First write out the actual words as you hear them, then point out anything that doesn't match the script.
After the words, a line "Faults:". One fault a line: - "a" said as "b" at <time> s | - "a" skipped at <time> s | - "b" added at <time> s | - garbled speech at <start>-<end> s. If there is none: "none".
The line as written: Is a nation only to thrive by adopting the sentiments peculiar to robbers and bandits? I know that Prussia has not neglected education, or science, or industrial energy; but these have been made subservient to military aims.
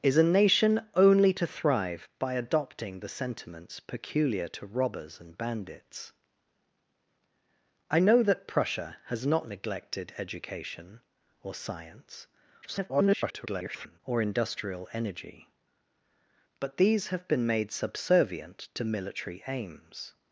Is a nation only to thrive by adopting the sentiments peculiar to robbers and bandits? I know that Prussia has not neglected education, or science, [garbled] or industrial energy; but these have been made subservient to military aims.
Faults:
- garbled speech at 12.6-14.0 s